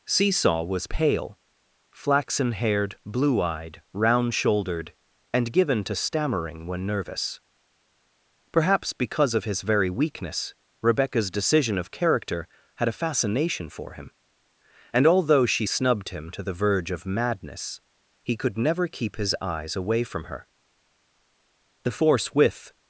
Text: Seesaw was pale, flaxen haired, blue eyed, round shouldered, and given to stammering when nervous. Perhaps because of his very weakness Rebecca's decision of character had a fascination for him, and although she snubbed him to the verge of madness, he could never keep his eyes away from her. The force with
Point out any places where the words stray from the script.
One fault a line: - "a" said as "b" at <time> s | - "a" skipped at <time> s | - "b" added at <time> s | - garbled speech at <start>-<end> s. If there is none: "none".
none